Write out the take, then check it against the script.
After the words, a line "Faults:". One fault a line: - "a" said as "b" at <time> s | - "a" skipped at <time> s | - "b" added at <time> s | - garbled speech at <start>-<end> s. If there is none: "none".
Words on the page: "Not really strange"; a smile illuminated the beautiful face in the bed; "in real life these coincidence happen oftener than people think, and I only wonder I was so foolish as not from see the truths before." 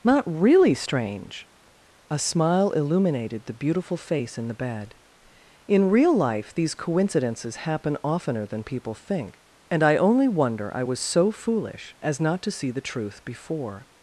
"Not really strange"; a smile illuminated the beautiful face in the bed; "in real life these coincidences happen oftener than people think, and I only wonder I was so foolish as not to see the truth before."
Faults:
- "coincidence" said as "coincidences" at 6.7 s
- "from" said as "to" at 12.4 s
- "truths" said as "truth" at 12.8 s